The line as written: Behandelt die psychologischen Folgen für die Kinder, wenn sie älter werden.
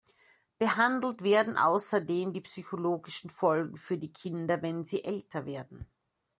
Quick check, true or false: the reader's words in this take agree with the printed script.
false